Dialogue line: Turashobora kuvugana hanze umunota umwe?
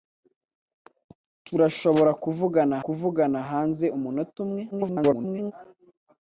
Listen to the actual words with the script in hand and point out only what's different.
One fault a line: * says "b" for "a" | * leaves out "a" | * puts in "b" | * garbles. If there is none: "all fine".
* puts in "kuvugana"
* garbles